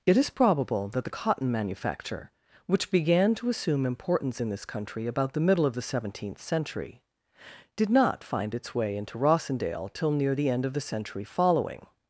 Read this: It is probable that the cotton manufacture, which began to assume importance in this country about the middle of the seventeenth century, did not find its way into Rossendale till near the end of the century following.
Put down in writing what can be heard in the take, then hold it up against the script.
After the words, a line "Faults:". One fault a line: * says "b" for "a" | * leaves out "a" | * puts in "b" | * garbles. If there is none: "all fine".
It is probable that the cotton manufacture, which began to assume importance in this country about the middle of the seventeenth century, did not find its way into Rossendale till near the end of the century following.
Faults:
all fine